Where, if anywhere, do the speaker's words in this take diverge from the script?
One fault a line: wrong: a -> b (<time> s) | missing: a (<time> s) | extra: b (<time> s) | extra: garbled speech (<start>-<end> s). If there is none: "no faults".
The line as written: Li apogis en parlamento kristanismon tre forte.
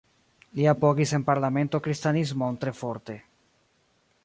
no faults